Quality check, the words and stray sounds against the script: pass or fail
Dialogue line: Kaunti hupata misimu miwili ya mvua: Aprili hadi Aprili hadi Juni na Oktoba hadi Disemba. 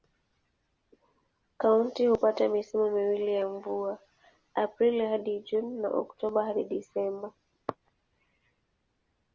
fail